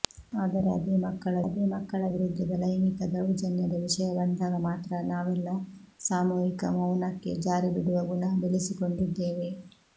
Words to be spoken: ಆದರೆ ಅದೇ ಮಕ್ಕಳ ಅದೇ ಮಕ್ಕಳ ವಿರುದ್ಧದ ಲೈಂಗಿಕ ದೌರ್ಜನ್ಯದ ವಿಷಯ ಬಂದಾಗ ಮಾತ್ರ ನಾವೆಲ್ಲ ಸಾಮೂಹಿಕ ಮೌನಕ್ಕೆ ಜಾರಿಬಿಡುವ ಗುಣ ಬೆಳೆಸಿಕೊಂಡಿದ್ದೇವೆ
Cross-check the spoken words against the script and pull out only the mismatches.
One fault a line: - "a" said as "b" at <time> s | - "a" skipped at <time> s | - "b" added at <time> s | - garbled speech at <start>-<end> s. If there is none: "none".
none